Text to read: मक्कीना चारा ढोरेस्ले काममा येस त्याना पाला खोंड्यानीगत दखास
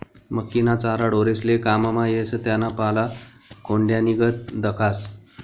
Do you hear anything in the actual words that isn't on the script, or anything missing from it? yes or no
no